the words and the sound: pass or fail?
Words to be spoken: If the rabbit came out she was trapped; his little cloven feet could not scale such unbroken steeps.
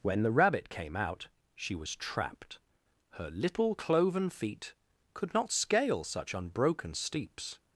fail